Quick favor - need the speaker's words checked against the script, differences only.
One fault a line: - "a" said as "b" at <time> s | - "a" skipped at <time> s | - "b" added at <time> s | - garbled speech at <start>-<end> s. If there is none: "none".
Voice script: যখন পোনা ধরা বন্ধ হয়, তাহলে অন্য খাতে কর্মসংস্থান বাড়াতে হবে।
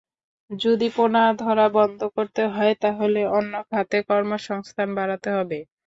- "যখন" said as "যদি" at 0.5 s
- "করতে" added at 2.1 s